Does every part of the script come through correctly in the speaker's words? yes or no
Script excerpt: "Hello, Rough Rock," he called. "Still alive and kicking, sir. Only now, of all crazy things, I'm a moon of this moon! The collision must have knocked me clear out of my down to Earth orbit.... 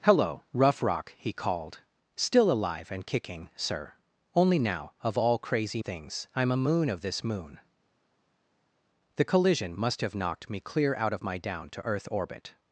yes